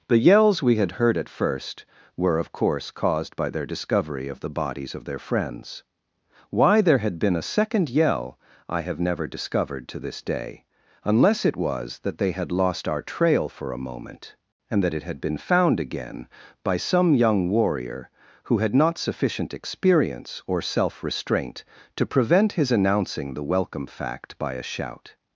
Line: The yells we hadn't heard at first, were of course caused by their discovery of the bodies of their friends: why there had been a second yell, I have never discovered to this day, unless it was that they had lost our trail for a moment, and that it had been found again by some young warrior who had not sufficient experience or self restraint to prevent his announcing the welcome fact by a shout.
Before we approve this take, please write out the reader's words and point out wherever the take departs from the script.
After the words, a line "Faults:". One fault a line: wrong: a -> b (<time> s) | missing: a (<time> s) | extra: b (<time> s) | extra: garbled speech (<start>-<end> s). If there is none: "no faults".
The yells we had heard at first, were of course caused by their discovery of the bodies of their friends: why there had been a second yell, I have never discovered to this day, unless it was that they had lost our trail for a moment, and that it had been found again by some young warrior who had not sufficient experience or self restraint to prevent his announcing the welcome fact by a shout.
Faults:
wrong: hadn't -> had (0.8 s)